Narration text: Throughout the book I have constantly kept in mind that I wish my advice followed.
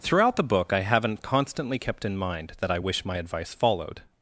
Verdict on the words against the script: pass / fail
fail